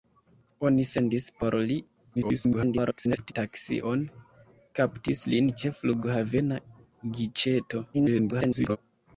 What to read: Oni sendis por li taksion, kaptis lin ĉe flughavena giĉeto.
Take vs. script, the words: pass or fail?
fail